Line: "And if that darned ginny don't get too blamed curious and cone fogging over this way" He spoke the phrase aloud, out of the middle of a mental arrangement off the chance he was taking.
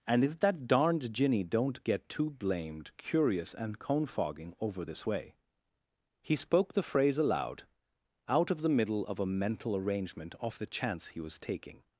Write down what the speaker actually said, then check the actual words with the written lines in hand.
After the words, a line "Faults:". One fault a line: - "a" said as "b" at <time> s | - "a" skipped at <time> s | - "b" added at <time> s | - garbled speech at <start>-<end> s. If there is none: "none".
"And if that darned ginny don't get too blamed curious and cone fogging over this way" He spoke the phrase aloud, out of the middle of a mental arrangement off the chance he was taking.
Faults:
none